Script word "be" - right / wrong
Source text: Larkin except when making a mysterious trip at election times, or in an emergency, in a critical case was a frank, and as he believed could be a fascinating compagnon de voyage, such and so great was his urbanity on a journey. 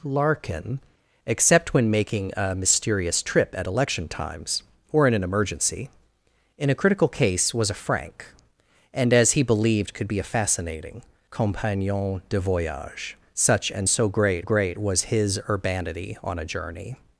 right